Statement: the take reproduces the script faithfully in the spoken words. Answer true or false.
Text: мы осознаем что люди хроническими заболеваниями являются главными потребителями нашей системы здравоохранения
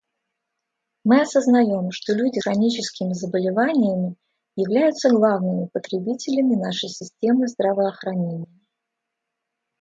true